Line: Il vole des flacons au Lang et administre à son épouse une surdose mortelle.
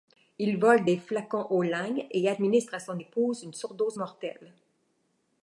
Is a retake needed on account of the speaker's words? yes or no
no